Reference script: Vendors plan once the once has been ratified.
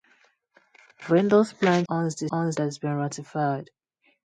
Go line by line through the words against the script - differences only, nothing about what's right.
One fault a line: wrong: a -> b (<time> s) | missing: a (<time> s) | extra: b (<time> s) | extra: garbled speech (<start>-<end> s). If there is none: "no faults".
no faults